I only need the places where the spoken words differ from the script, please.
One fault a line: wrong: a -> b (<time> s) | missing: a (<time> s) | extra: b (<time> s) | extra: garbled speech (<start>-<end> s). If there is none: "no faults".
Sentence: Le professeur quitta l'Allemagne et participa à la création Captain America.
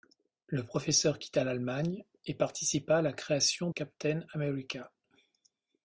no faults